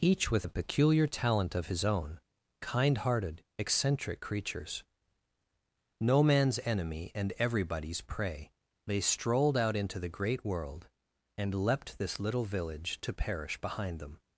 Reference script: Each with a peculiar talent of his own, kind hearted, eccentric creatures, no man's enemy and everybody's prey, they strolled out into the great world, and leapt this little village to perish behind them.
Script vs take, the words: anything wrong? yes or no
no